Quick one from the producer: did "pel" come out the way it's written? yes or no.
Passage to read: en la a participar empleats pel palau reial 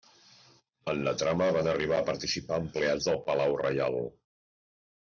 no